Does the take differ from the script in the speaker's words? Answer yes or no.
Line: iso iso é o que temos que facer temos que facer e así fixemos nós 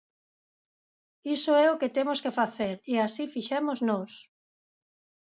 yes